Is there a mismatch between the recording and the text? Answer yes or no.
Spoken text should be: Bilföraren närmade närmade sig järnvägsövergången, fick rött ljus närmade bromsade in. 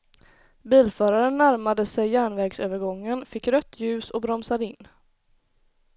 yes